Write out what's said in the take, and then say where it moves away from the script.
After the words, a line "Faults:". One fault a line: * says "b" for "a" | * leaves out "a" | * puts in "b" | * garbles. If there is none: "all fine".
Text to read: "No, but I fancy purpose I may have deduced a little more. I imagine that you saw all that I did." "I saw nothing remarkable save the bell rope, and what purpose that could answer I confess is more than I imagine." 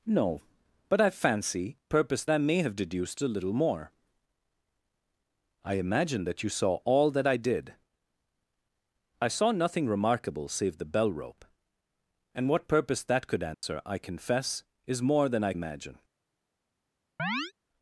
"No, but I fancy purpose I may have deduced a little more. I imagine that you saw all that I did." "I saw nothing remarkable save the bell rope, and what purpose that could answer I confess is more than I imagine."
Faults:
all fine